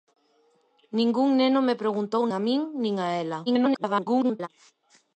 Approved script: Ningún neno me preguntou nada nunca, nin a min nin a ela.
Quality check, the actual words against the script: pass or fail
fail